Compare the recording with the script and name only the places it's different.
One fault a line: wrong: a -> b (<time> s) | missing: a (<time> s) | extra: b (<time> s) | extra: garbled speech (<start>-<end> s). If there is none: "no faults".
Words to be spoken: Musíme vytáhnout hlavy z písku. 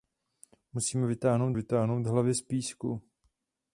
extra: vytáhnout (1.5 s)